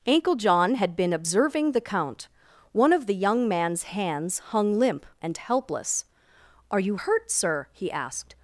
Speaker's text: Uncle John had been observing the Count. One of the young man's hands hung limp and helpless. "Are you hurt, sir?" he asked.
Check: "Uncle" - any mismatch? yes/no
yes